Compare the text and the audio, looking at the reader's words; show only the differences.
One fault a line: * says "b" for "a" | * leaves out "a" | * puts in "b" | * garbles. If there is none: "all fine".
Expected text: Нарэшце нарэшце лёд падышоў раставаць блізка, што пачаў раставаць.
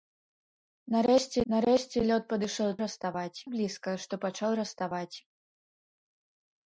all fine